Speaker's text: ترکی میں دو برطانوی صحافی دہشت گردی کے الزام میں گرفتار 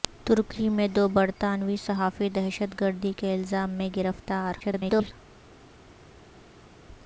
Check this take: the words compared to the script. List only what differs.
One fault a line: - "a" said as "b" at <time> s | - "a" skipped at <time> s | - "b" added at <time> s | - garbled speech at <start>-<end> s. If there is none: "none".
- garbled speech at 4.6-5.1 s